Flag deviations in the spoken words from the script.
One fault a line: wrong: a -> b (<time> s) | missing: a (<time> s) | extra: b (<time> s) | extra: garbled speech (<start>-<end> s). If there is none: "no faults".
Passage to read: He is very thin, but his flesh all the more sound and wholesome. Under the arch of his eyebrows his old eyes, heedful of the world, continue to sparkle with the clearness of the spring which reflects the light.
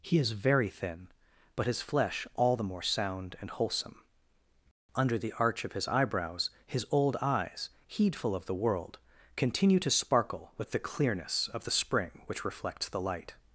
no faults